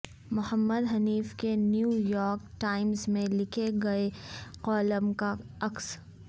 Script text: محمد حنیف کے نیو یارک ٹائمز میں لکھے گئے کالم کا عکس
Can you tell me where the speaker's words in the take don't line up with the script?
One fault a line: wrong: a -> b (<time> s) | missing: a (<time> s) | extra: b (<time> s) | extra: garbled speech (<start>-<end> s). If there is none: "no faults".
no faults